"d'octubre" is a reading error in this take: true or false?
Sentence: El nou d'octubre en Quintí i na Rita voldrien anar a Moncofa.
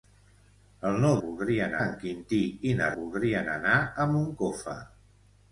true